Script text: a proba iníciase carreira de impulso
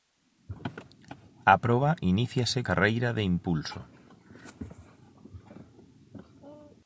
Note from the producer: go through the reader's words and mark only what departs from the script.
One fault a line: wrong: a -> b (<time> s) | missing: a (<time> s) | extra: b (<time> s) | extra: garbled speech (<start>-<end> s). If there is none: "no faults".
no faults